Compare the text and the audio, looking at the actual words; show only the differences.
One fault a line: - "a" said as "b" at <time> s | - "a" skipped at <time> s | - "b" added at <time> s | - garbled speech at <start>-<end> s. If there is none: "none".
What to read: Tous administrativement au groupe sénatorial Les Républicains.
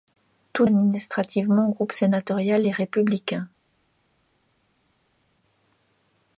none